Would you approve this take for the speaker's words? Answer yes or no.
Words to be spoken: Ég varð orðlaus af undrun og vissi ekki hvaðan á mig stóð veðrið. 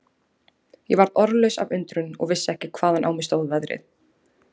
yes